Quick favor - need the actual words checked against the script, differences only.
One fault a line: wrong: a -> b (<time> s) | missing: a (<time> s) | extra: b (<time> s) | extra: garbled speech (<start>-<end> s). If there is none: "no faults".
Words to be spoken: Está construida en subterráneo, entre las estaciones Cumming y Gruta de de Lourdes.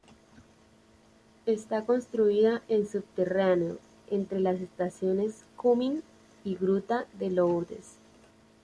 missing: de (7.3 s)